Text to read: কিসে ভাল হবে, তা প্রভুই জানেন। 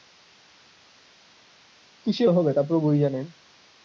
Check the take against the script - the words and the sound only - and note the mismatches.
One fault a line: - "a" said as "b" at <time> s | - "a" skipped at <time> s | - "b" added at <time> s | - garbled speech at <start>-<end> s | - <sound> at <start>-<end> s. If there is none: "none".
- "ভাল" skipped at 2.2 s